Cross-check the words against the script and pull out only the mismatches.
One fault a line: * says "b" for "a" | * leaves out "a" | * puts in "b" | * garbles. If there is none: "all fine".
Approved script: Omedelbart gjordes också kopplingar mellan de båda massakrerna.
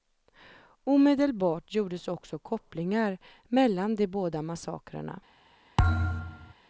all fine